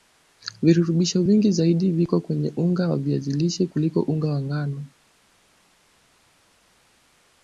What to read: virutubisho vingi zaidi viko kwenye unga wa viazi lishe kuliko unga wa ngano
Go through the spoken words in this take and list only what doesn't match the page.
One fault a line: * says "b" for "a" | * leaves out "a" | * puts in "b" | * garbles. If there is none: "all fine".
all fine